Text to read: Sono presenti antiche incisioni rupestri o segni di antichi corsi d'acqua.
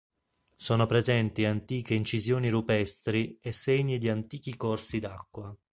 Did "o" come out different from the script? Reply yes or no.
yes